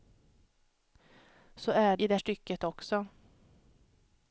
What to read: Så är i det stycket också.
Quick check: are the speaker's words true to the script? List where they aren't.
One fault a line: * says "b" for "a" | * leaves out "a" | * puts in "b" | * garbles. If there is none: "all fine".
all fine